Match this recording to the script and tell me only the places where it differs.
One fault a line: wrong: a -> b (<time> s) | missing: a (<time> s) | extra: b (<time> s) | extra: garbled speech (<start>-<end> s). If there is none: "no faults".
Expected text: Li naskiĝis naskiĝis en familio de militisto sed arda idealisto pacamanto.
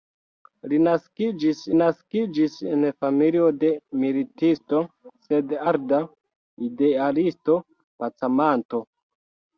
no faults